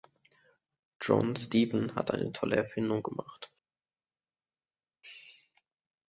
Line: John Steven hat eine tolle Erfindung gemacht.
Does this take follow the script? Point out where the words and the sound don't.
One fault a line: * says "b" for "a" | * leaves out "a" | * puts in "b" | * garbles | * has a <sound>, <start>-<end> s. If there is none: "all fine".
all fine